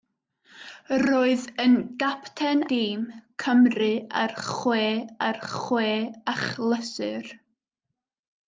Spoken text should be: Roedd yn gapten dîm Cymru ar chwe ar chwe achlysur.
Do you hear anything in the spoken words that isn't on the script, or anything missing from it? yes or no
no